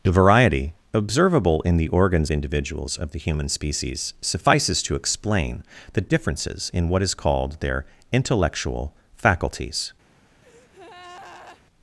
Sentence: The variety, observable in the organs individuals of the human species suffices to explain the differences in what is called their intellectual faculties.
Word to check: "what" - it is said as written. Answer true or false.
true